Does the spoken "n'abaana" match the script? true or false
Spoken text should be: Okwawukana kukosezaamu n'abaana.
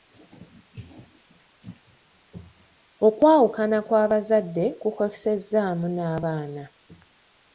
true